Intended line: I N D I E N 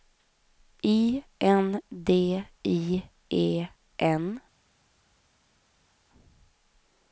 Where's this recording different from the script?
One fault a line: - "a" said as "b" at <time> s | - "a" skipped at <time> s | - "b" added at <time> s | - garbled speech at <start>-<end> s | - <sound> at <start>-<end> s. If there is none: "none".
none